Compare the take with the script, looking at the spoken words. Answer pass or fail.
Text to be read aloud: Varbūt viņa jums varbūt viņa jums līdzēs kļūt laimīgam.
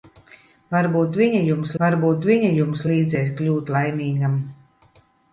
pass